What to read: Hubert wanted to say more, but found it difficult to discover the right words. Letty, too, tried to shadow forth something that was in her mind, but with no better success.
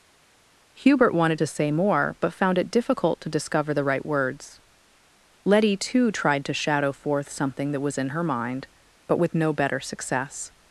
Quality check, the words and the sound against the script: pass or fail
pass